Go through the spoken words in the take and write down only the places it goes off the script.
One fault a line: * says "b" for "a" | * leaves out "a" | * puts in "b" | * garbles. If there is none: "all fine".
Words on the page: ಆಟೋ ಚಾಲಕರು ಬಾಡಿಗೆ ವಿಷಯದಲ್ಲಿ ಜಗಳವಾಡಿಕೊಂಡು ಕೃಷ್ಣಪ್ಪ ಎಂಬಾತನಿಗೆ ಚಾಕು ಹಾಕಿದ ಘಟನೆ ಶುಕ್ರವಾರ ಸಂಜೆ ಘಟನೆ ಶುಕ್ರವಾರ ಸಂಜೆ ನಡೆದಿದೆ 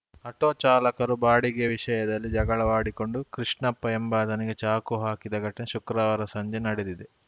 * leaves out "ಘಟನೆ ಶುಕ್ರವಾರ ಸಂಜೆ"